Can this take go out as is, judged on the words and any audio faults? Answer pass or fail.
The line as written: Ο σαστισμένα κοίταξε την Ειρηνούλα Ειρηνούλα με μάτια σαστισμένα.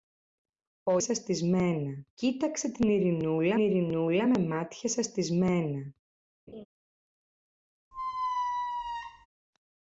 fail